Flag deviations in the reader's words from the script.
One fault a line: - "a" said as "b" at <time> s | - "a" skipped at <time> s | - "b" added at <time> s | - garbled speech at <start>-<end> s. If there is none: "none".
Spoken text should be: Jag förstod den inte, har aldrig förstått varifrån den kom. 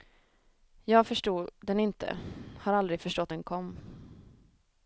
- "varifrån" skipped at 3.3 s